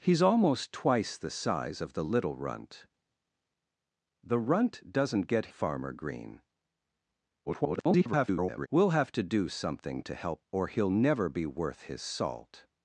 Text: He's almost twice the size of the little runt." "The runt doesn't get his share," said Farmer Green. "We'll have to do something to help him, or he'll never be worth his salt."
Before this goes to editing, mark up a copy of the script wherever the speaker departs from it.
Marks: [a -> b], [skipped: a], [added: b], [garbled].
He's almost twice the size of the little runt." "The runt doesn't get [skipped: his share," said] Farmer Green. [garbled] "We'll have to do something to help [skipped: him,] or he'll never be worth his salt."